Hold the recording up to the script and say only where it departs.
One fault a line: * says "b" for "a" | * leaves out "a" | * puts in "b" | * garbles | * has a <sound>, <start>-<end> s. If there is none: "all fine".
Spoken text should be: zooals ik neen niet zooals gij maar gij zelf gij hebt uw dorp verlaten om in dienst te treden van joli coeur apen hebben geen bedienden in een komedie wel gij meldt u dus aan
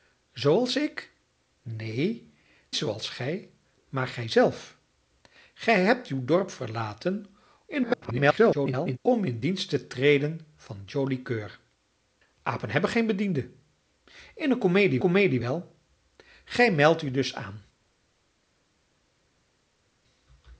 * leaves out "niet"
* garbles
* puts in "komedie"